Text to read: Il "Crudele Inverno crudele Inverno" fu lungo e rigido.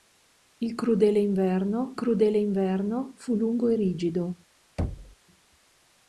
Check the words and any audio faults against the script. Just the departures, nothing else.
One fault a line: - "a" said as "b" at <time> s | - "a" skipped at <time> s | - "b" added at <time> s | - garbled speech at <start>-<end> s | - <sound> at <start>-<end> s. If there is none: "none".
- thud at 4.8-5.2 s